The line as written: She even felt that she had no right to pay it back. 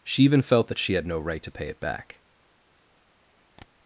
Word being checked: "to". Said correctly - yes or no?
yes